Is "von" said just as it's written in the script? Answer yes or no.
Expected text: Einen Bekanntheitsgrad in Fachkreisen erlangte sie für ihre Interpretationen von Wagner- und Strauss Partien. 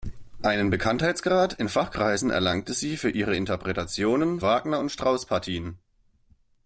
no